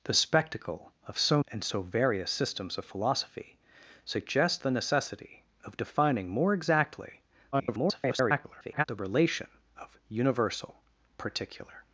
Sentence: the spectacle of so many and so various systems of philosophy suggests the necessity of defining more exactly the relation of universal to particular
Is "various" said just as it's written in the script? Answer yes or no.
yes